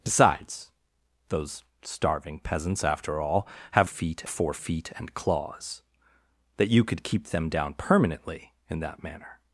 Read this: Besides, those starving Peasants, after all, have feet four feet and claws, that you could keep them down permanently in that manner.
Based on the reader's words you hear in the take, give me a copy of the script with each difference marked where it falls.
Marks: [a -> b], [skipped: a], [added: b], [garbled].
Besides, those starving Peasants, after all, have feet four feet and claws, that you could keep them down permanently in that manner.